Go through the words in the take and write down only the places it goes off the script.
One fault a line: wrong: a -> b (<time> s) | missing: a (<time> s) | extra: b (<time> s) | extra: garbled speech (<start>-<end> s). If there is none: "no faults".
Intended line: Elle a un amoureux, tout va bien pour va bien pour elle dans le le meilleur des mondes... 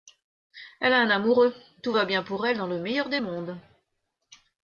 missing: va bien pour (2.5 s)
missing: le (2.8 s)